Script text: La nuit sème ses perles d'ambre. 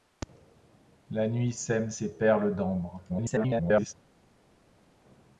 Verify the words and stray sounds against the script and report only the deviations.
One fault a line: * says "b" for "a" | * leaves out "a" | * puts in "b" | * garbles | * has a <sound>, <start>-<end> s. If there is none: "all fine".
* garbles